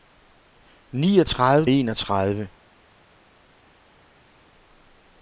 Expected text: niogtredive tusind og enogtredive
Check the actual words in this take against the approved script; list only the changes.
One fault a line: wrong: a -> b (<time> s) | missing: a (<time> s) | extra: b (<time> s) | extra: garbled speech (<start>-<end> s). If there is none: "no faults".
missing: tusind og (1.6 s)